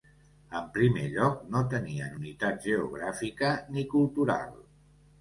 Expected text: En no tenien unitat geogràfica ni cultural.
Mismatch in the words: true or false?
true